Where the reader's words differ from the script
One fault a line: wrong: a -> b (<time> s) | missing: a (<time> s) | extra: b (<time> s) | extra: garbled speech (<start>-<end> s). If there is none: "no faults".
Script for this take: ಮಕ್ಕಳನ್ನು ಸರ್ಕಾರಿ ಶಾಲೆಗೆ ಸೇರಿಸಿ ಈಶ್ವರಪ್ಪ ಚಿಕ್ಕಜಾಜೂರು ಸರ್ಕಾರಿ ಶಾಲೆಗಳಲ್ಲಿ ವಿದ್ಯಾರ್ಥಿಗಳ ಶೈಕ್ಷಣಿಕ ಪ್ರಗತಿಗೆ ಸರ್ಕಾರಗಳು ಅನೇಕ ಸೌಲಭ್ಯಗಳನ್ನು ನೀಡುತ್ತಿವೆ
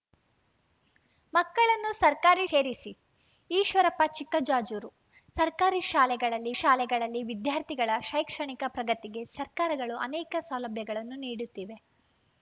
missing: ಶಾಲೆಗೆ (2.5 s)
extra: ಶಾಲೆಗಳಲ್ಲಿ (6.6 s)